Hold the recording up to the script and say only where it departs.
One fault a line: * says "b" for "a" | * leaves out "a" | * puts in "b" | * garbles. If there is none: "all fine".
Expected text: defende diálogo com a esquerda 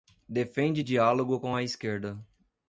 all fine